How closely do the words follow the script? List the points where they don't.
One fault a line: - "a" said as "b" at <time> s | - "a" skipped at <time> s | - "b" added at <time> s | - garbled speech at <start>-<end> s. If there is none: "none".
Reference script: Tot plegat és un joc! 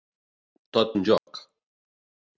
- "plegat és" skipped at 0.9 s